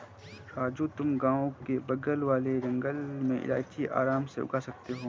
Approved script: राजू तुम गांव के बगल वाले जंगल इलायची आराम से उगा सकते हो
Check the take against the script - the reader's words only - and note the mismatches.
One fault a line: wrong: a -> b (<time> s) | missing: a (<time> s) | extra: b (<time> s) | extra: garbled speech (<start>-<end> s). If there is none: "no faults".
extra: में (3.2 s)